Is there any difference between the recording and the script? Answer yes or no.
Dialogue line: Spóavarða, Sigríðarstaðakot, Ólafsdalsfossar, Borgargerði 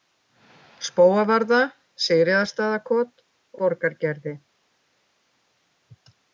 yes